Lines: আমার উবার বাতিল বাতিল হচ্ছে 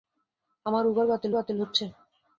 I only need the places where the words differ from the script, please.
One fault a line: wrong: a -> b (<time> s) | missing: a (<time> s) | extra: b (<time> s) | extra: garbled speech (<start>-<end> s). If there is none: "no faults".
no faults